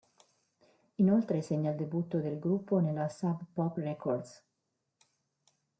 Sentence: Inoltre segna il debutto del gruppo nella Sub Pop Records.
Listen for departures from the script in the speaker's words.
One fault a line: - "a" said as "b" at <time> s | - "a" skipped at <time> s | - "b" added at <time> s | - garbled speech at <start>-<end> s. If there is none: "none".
none